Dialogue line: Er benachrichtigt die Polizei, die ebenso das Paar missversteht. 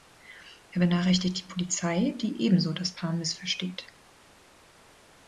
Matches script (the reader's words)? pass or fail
pass